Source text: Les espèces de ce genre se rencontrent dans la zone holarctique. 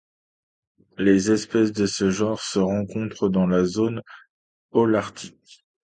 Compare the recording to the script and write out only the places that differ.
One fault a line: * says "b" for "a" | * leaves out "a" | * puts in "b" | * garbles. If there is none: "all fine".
all fine